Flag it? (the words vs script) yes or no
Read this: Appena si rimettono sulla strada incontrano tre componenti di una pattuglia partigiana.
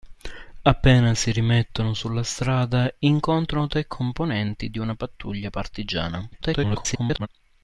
yes